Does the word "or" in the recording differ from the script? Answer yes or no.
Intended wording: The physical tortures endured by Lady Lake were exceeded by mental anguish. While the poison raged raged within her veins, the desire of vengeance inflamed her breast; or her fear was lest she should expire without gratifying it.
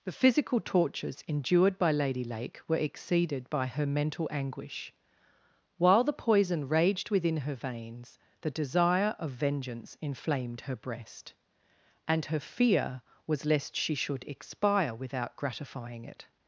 yes